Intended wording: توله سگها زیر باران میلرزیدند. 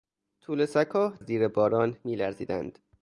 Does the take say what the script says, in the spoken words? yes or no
yes